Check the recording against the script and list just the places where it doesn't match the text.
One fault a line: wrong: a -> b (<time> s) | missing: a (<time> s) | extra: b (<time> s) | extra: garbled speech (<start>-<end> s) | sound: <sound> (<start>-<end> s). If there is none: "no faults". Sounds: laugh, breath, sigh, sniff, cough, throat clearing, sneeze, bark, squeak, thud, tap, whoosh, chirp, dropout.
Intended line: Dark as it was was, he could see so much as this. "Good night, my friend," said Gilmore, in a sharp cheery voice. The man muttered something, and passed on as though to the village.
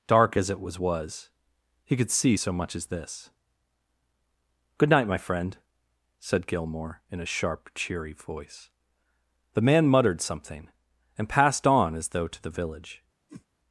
sound: whoosh (13.3-13.5 s)